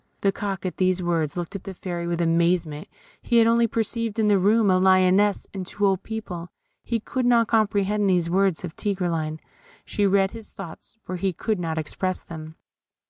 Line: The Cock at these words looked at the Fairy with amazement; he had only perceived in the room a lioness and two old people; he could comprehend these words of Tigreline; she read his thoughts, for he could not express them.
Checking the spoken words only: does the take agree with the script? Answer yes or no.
no